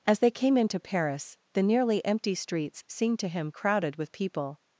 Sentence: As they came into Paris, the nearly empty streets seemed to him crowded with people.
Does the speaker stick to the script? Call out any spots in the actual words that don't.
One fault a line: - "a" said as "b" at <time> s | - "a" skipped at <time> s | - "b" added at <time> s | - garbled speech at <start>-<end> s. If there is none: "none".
none